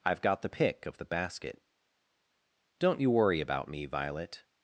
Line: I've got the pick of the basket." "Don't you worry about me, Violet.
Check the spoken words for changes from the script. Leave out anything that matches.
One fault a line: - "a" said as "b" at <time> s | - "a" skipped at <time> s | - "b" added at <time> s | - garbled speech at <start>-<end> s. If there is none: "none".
none